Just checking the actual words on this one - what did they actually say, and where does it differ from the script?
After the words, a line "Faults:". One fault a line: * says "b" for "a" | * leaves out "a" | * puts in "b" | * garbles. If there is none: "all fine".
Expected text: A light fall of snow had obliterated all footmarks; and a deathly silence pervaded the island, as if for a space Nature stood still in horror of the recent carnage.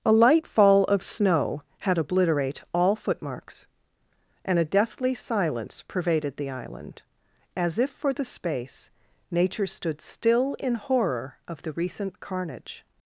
A light fall of snow had obliterate all footmarks; and a deathly silence pervaded the island, as if for the space Nature stood still in horror of the recent carnage.
Faults:
* says "obliterate" for "obliterated"
* says "the" for "a"